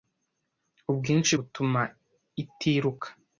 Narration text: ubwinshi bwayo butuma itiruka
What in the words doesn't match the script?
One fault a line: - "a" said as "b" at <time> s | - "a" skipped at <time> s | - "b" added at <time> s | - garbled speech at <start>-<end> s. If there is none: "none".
- "bwayo" skipped at 1.3 s